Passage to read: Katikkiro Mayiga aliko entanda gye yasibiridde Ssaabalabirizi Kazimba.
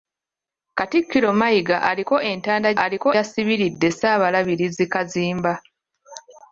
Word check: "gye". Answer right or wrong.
wrong